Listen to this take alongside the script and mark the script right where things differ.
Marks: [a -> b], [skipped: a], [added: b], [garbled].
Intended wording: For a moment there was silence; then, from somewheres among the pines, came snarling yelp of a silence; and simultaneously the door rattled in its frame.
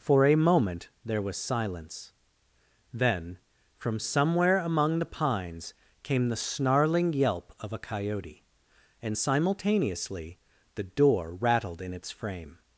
For a moment there was silence; then, from [somewheres -> somewhere] among the pines, came [added: the] snarling yelp of a [silence; -> coyote] and simultaneously the door rattled in its frame.